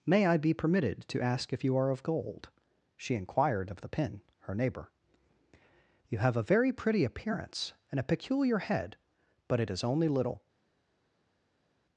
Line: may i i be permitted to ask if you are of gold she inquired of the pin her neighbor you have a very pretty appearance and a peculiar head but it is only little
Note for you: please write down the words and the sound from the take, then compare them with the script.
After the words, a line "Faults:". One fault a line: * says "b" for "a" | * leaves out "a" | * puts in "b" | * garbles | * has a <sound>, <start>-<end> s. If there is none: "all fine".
may i be permitted to ask if you are of gold she inquired of the pin her neighbor you have a very pretty appearance and a peculiar head but it is only little
Faults:
* leaves out "i"